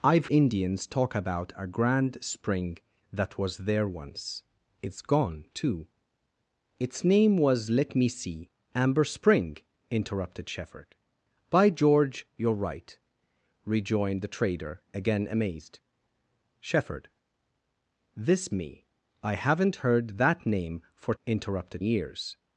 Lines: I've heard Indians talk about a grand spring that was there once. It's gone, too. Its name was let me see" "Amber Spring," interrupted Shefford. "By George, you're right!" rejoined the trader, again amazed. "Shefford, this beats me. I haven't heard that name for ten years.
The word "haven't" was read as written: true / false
true